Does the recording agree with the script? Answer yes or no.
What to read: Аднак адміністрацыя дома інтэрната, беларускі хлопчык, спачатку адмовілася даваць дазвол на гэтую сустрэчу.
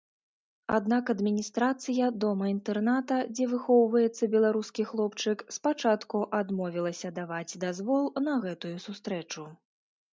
no